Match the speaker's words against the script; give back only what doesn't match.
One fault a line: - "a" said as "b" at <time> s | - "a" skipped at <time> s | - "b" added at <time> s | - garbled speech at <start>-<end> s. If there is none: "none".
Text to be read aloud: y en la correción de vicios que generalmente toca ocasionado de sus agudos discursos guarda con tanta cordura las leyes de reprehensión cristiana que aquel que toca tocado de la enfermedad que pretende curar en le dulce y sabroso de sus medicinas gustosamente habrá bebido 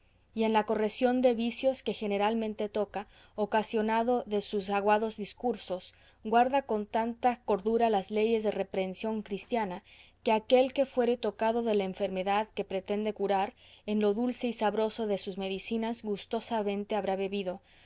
- "toca" said as "fuere" at 10.9 s
- "le" said as "lo" at 14.0 s